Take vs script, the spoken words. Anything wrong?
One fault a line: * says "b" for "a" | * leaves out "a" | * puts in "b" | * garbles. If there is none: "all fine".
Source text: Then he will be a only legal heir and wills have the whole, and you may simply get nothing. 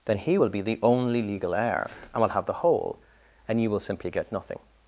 * says "the" for "a"
* says "will" for "wills"
* says "will" for "may"